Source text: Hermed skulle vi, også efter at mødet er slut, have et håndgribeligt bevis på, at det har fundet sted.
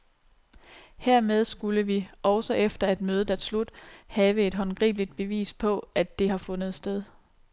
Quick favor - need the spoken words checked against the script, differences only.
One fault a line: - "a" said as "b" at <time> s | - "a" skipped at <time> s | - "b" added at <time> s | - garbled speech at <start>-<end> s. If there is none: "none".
none